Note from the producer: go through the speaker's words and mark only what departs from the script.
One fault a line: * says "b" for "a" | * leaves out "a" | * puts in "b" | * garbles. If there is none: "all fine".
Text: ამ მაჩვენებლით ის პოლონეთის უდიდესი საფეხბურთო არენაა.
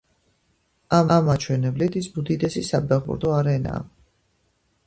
* puts in "ამ"
* leaves out "პოლონეთის"